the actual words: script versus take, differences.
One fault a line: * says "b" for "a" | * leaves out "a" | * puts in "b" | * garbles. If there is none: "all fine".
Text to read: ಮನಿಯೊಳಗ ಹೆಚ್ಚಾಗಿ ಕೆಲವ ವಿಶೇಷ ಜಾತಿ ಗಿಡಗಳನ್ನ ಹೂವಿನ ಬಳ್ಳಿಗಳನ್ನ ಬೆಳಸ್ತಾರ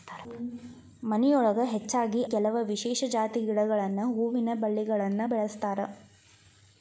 all fine